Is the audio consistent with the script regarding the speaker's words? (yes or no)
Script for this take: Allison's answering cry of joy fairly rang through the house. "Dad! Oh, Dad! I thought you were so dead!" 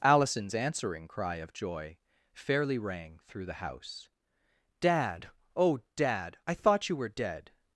no